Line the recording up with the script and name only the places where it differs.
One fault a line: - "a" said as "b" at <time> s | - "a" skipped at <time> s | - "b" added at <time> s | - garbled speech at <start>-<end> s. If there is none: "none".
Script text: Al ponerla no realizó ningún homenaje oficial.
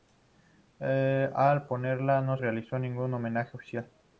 none